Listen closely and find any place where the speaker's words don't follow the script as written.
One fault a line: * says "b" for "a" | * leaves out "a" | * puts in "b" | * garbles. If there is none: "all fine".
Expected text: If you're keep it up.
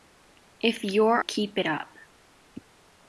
all fine